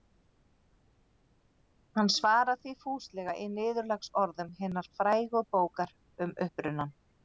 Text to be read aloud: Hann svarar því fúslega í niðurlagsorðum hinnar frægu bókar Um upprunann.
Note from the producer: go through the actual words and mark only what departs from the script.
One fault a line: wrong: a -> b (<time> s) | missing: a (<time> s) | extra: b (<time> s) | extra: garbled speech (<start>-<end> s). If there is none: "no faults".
no faults